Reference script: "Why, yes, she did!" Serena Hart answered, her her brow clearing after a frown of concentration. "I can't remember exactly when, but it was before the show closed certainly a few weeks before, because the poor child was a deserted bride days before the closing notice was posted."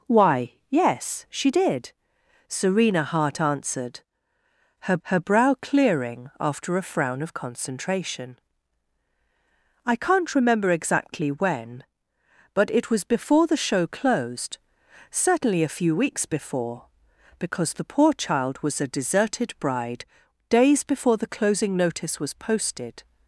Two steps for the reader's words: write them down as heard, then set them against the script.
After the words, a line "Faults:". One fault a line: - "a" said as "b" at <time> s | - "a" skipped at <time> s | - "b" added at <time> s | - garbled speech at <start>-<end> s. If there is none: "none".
"Why, yes, she did!" Serena Hart answered, her her brow clearing after a frown of concentration. "I can't remember exactly when, but it was before the show closed certainly a few weeks before, because the poor child was a deserted bride days before the closing notice was posted."
Faults:
none